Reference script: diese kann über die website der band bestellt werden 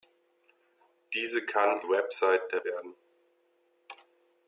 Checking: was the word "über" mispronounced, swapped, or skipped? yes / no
yes